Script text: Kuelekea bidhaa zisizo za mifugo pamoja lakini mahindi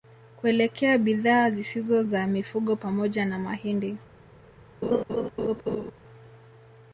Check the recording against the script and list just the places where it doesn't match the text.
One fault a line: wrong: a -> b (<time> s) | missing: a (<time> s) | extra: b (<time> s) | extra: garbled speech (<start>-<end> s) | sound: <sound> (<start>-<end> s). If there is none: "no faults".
wrong: lakini -> na (3.3 s)
sound: laugh (4.8-5.9 s)